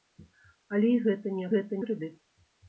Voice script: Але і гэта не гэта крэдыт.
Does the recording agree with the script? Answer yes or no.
yes